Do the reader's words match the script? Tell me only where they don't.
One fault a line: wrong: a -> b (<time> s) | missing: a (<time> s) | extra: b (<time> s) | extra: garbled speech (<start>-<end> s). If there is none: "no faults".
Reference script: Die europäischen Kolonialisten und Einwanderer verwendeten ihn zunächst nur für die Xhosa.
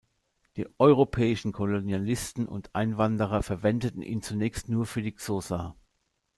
no faults